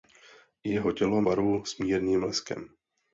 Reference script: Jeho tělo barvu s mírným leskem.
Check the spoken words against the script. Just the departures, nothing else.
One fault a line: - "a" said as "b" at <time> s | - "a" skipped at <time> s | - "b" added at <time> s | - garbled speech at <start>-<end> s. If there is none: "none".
none